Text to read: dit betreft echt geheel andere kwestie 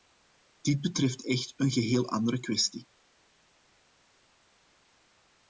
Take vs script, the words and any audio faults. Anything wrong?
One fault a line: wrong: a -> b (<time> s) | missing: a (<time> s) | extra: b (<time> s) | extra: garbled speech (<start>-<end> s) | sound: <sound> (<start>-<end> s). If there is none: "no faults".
extra: een (1.6 s)